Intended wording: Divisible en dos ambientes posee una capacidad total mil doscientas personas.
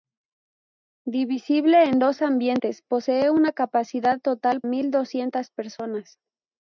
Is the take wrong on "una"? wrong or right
right